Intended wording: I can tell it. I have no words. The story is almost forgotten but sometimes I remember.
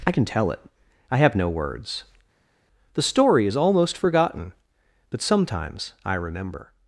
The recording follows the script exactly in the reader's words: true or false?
true